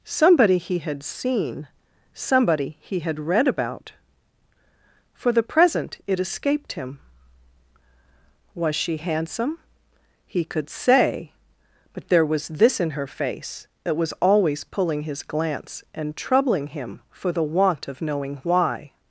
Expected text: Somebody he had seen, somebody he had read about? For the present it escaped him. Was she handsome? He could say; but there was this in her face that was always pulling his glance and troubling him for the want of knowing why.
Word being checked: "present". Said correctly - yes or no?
yes